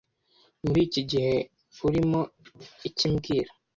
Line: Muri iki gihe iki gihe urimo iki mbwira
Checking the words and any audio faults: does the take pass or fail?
fail